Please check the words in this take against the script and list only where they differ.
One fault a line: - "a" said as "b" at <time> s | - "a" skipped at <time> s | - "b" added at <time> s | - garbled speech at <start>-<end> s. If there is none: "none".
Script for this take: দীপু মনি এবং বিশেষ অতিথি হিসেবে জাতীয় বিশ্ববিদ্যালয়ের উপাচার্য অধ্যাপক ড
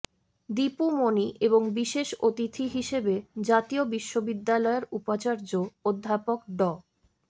none